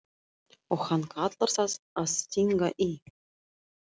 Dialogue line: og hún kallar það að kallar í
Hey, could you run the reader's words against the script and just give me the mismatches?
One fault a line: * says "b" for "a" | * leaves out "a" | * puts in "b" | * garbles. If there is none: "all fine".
* says "hann" for "hún"
* says "stinga" for "kallar"